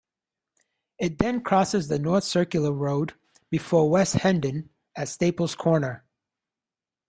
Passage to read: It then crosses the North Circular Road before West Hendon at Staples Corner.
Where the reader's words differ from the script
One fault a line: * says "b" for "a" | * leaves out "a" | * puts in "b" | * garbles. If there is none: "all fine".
all fine